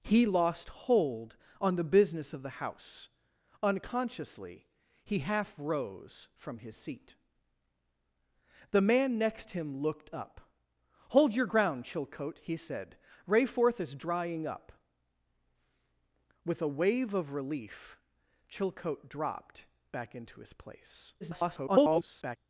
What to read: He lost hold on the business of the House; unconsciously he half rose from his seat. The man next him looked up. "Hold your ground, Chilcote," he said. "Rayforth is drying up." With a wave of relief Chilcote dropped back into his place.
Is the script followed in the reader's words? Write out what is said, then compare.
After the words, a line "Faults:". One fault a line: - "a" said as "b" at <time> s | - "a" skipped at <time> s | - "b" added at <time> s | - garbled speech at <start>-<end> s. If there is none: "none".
He lost hold on the business of the House; unconsciously he half rose from his seat. The man next him looked up. "Hold your ground, Chilcote," he said. "Rayforth is drying up." With a wave of relief Chilcote dropped back into his place. [garbled]
Faults:
- garbled speech at 21.2-22.4 s